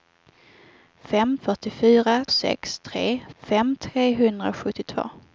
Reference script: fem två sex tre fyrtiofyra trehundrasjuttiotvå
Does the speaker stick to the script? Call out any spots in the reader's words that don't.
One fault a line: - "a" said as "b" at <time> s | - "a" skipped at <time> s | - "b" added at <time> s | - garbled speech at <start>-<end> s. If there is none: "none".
- "två" said as "fyrtiofyra" at 1.4 s
- "fyrtiofyra" said as "fem" at 3.4 s